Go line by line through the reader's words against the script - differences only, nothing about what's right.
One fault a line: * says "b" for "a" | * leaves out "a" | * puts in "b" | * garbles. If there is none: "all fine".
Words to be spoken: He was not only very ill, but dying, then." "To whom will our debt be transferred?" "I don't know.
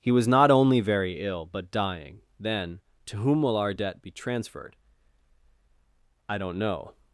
all fine